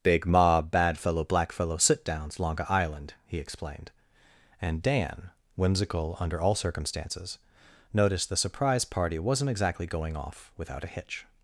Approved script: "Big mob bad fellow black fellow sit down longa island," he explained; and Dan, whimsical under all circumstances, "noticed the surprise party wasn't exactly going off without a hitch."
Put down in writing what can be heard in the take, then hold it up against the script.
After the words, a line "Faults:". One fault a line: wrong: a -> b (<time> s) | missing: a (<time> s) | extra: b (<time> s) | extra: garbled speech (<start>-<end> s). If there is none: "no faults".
"Big mob bad fellow black fellow sit downs longa island," he explained; and Dan, whimsical under all circumstances, "noticed the surprise party wasn't exactly going off without a hitch."
Faults:
wrong: down -> downs (2.0 s)